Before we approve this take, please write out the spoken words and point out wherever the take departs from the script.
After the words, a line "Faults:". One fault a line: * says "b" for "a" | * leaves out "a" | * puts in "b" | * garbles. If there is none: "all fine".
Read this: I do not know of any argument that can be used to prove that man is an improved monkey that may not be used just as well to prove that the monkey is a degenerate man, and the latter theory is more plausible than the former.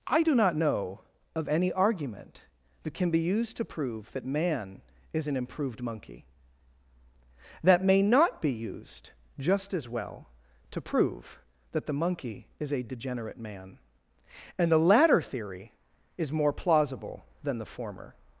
I do not know of any argument that can be used to prove that man is an improved monkey that may not be used just as well to prove that the monkey is a degenerate man, and the latter theory is more plausible than the former.
Faults:
all fine